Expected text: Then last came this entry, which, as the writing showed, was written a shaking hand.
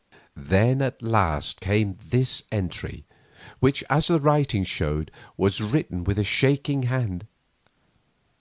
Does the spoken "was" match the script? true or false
true